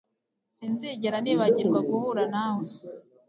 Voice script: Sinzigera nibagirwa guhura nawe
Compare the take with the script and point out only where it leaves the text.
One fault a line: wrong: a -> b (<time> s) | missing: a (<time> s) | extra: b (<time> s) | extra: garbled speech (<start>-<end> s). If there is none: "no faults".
no faults